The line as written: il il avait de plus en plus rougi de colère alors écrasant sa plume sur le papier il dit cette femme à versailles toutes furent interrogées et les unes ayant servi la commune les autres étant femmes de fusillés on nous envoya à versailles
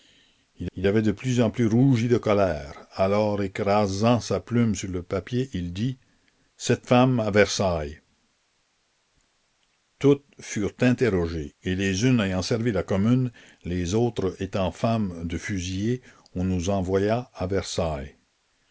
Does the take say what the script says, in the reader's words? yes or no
yes